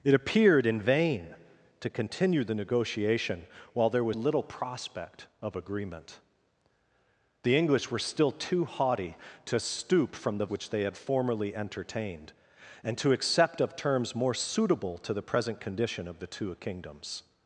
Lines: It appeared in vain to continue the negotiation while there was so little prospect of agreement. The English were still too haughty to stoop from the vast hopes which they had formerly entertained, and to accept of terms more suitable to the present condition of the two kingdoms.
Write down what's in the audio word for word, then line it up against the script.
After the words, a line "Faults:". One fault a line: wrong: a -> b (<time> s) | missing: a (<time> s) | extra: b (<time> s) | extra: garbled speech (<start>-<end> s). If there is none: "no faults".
It appeared in vain to continue the negotiation while there was little prospect of agreement. The English were still too haughty to stoop from the which they had formerly entertained, and to accept of terms more suitable to the present condition of the two kingdoms.
Faults:
missing: so (4.2 s)
missing: vast hopes (10.5 s)